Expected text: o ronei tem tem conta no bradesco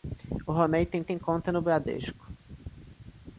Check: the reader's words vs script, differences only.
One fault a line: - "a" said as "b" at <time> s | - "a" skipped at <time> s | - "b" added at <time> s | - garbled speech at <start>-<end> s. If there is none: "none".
none